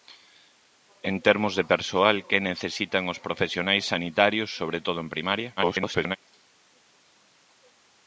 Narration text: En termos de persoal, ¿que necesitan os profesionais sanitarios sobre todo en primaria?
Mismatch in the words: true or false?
true